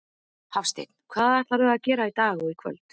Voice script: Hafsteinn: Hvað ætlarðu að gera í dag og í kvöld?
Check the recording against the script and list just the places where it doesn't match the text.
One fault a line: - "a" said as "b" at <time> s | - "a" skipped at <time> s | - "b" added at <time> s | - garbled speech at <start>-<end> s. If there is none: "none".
none